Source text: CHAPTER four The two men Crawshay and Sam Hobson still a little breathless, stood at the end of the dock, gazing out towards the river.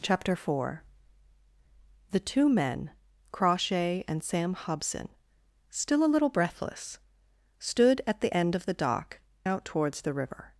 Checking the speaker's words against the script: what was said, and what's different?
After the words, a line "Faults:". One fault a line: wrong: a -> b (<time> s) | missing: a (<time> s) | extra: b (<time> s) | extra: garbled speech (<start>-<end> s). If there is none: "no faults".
CHAPTER four The two men Crawshay and Sam Hobson still a little breathless, stood at the end of the dock, out towards the river.
Faults:
missing: gazing (9.2 s)